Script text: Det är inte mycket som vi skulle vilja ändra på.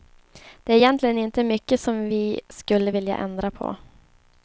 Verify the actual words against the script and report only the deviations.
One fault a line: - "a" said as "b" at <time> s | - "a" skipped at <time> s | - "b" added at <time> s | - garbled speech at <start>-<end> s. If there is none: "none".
- "egentligen" added at 0.8 s